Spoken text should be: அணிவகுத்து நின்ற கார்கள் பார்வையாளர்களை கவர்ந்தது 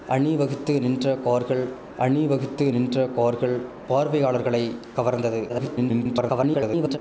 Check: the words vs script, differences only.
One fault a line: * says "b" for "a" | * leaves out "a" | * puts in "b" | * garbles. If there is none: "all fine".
* puts in "அணிவகுத்து நின்ற கார்கள்"
* garbles